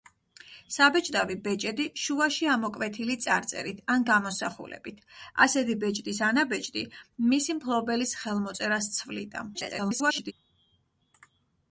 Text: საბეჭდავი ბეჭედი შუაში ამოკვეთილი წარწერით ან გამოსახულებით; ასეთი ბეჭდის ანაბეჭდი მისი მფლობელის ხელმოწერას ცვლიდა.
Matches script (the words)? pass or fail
fail